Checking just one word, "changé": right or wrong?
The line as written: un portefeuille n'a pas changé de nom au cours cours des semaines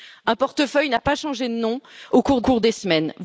right